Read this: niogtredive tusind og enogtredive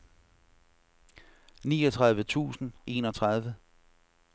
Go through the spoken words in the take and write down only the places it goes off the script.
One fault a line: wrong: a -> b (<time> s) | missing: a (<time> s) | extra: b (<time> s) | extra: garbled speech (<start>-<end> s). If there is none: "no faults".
missing: og (2.7 s)